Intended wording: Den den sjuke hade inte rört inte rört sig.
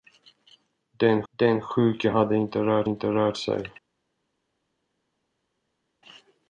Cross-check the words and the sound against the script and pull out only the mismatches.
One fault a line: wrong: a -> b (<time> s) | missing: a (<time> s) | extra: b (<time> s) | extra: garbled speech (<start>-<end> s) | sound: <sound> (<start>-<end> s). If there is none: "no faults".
no faults